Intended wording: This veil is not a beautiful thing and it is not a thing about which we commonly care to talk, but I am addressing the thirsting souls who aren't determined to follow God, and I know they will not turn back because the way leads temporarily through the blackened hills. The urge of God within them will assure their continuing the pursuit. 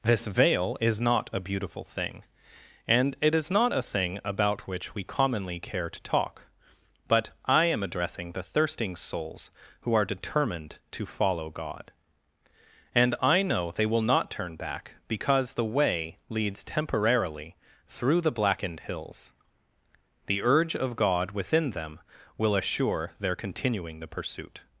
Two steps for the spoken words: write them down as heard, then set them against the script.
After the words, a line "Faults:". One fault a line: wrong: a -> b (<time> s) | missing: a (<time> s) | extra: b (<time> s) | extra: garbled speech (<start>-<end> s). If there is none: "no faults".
This veil is not a beautiful thing and it is not a thing about which we commonly care to talk, but I am addressing the thirsting souls who are determined to follow God, and I know they will not turn back because the way leads temporarily through the blackened hills. The urge of God within them will assure their continuing the pursuit.
Faults:
wrong: aren't -> are (9.9 s)